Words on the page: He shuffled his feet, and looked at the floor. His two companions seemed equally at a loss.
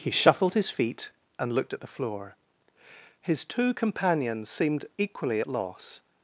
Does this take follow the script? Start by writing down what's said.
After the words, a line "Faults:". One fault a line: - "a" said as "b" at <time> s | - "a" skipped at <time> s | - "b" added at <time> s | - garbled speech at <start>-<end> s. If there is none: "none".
He shuffled his feet, and looked at the floor. His two companions seemed equally at loss.
Faults:
- "a" skipped at 5.5 s